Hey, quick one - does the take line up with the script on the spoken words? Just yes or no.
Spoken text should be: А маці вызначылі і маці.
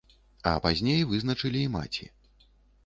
no